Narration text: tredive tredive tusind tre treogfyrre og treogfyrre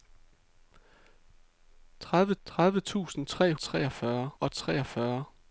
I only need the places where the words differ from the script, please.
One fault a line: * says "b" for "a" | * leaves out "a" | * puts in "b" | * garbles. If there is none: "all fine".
all fine